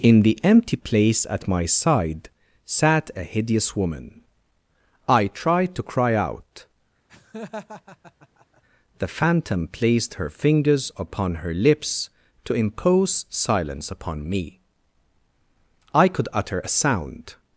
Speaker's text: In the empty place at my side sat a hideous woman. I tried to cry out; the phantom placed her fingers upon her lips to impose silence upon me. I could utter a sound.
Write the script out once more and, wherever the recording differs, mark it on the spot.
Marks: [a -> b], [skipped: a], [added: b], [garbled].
In the empty place at my side sat a hideous woman. I tried to cry out; the phantom placed her fingers upon her lips to impose silence upon me. I could utter a sound.